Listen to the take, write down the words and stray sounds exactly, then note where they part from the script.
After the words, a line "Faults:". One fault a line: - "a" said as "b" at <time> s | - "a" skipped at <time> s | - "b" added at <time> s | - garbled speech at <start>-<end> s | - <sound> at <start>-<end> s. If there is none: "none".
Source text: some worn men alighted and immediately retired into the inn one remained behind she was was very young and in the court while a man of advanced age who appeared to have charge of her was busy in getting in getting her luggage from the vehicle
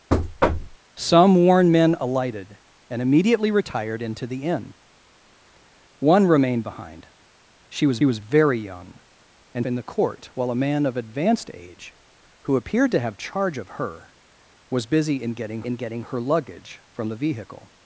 some worn men alighted and immediately retired into the inn one remained behind she was was very young and in the court while a man of advanced age who appeared to have charge of her was busy in getting in getting her luggage from the vehicle
Faults:
- thud at 0.1-0.8 s